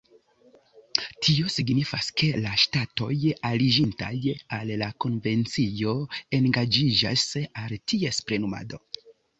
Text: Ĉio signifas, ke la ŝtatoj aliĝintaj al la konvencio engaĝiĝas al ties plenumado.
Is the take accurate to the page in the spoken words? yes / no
no